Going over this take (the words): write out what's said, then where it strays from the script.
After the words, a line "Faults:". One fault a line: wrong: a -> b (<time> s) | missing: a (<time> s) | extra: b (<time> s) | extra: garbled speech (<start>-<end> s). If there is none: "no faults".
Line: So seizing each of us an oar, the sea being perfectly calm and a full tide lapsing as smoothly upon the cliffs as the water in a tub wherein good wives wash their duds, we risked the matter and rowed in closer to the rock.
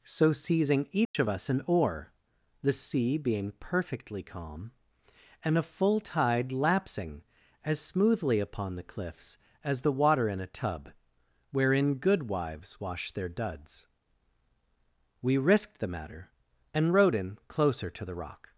So seizing each of us an oar, the sea being perfectly calm and a full tide lapsing as smoothly upon the cliffs as the water in a tub wherein good wives wash their duds, we risked the matter and rowed in closer to the rock.
Faults:
no faults